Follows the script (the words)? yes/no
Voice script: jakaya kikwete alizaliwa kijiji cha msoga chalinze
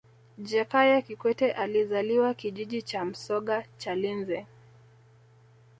yes